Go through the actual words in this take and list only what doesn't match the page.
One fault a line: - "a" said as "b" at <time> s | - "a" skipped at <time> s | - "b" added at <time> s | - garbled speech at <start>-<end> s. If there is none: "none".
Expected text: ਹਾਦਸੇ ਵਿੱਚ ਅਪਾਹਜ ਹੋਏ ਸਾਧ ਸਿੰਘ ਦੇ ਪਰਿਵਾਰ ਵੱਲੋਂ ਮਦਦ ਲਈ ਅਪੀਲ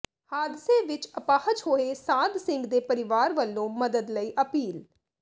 none